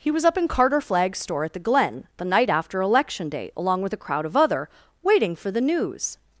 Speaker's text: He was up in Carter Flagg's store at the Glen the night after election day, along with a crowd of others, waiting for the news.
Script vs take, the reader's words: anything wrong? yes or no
yes